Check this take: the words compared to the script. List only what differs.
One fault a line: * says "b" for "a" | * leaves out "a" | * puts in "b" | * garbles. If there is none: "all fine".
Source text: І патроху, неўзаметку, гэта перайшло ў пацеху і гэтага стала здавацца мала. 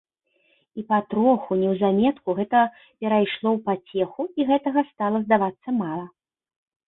all fine